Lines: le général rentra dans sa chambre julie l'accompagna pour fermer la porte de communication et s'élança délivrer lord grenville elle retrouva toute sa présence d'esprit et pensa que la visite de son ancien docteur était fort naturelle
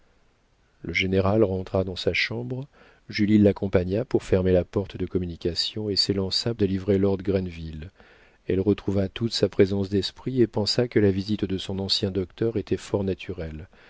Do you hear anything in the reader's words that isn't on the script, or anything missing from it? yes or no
no